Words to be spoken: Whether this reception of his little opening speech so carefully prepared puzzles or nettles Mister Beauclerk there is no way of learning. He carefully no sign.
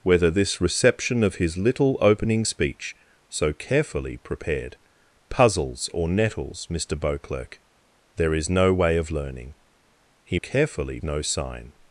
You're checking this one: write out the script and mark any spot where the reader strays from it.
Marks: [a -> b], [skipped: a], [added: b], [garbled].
Whether this reception of his little opening speech so carefully prepared puzzles or nettles Mister Beauclerk there is no way of learning. He carefully no sign.